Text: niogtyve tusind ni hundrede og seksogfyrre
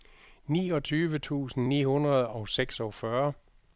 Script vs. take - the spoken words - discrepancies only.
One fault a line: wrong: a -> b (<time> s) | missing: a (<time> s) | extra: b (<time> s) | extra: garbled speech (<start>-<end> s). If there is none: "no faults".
no faults